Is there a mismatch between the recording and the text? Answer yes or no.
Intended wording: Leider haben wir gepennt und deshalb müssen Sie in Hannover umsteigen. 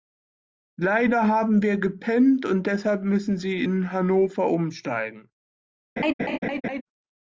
no